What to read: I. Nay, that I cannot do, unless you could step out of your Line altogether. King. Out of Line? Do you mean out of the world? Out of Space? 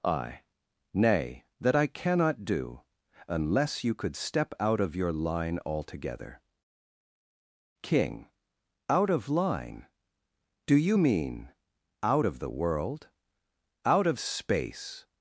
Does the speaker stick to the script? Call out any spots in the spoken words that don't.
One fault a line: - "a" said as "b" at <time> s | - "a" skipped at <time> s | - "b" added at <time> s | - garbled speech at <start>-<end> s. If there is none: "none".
none